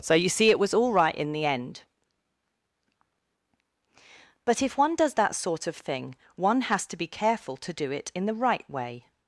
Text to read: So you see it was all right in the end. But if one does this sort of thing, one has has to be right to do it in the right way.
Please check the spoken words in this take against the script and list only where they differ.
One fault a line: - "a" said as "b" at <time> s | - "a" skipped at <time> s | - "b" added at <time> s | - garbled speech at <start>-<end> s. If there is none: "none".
- "this" said as "that" at 5.1 s
- "has" skipped at 6.9 s
- "right" said as "careful" at 7.1 s